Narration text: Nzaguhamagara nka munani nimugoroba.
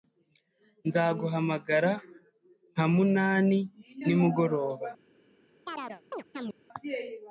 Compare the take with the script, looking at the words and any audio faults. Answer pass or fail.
fail